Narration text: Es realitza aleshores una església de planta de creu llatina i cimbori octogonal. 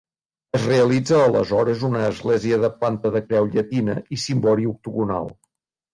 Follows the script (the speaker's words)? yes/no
yes